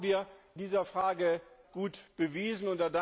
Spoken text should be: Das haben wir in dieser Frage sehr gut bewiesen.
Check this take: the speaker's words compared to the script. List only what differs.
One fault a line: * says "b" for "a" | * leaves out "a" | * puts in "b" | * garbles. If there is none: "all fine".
* leaves out "in"
* leaves out "sehr"